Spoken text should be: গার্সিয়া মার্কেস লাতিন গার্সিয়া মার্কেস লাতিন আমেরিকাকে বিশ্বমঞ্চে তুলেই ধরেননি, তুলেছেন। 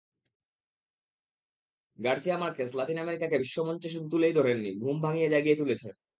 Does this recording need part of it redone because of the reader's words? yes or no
yes